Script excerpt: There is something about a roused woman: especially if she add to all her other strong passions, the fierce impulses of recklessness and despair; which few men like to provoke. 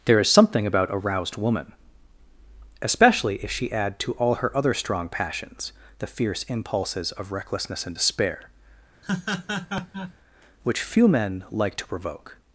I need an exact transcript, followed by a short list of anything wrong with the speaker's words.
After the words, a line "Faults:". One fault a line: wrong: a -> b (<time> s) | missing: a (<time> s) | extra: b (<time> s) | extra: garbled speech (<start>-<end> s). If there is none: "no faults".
There is something about a roused woman: especially if she add to all her other strong passions, the fierce impulses of recklessness and despair; which few men like to provoke.
Faults:
no faults